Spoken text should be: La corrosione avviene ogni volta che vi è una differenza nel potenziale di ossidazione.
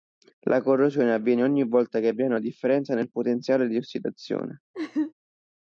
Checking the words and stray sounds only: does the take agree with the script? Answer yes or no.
no